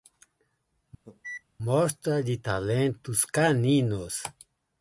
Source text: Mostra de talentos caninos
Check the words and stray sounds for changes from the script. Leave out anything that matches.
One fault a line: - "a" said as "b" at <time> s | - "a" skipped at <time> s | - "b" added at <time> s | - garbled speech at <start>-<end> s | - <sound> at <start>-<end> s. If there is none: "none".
- cough at 1.0-1.4 s